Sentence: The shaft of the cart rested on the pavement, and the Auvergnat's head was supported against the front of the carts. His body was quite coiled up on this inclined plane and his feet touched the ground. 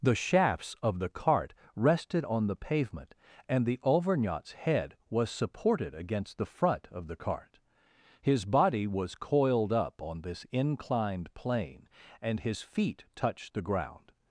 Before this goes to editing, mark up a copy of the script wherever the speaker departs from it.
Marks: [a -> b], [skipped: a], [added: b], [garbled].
The [shaft -> shafts] of the cart rested on the pavement, and the Auvergnat's head was supported against the front of the [carts. -> cart] His body was [skipped: quite] coiled up on this inclined plane and his feet touched the ground.